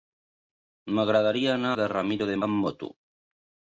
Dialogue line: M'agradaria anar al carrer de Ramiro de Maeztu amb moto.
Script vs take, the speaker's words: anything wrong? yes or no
yes